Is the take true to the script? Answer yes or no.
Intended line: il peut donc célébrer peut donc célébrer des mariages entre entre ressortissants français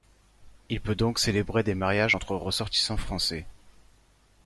no